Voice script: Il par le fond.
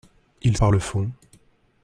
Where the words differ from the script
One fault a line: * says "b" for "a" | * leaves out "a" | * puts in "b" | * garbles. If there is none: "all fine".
all fine